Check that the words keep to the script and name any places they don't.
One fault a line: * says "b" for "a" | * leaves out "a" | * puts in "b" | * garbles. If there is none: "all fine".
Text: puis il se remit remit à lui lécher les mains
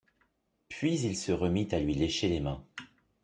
* leaves out "remit"